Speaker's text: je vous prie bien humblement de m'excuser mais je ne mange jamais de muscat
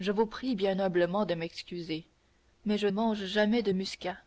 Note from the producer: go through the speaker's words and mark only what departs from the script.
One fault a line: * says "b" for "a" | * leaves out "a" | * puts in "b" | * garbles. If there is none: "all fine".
* leaves out "ne"